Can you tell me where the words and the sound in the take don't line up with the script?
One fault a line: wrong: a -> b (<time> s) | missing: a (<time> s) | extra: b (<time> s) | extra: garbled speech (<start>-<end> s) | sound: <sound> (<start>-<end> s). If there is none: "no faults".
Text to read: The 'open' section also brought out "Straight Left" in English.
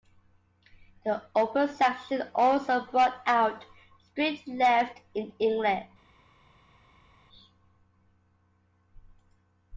no faults